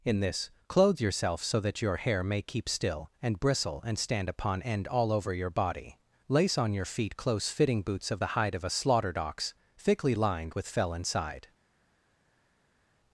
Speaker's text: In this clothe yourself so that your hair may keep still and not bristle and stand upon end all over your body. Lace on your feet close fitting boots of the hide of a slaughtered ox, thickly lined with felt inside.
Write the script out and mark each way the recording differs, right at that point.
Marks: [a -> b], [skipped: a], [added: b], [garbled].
In this clothe yourself so that your hair may keep still and [skipped: not] bristle and stand upon end all over your body. Lace on your feet close fitting boots of the hide of a slaughtered ox, thickly lined with [felt -> fell] inside.